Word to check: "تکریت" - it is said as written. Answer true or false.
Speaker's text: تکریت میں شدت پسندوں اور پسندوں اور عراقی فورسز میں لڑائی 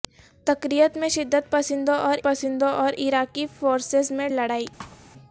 true